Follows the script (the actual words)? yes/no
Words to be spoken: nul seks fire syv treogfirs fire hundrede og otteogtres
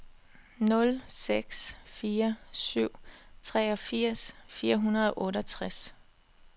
yes